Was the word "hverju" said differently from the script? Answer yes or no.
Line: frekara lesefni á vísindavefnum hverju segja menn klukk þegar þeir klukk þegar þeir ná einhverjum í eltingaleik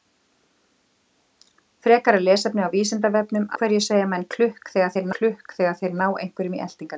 no